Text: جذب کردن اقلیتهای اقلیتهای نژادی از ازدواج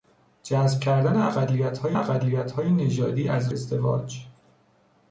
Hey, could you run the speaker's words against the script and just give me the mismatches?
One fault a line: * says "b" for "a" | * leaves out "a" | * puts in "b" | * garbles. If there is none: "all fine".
all fine